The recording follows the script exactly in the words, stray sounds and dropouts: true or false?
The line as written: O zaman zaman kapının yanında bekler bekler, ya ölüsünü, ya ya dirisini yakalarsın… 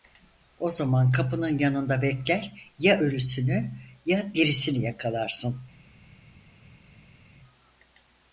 false